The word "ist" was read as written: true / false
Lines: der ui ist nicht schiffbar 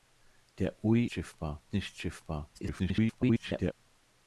false